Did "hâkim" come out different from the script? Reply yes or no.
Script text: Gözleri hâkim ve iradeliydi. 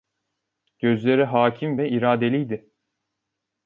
no